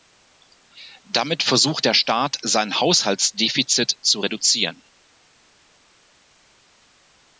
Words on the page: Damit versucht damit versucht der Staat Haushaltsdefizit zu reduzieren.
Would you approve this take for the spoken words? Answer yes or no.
no